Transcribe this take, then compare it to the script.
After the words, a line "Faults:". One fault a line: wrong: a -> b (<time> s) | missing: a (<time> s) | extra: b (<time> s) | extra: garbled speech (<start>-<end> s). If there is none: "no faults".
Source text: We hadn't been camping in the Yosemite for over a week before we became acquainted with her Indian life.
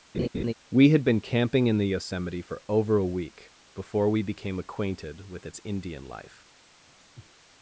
We had been camping in the Yosemite for over a week before we became acquainted with its Indian life.
Faults:
wrong: hadn't -> had (0.9 s)
wrong: her -> its (5.5 s)